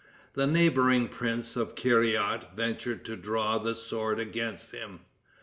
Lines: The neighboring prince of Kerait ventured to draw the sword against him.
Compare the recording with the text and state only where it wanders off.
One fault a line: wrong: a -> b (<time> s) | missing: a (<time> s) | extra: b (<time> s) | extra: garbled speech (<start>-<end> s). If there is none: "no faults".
no faults